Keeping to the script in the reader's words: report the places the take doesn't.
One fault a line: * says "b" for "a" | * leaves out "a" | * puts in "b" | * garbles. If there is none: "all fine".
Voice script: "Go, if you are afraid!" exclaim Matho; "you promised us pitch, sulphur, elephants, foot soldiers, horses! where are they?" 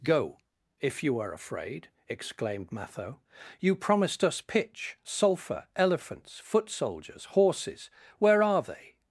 * says "exclaimed" for "exclaim"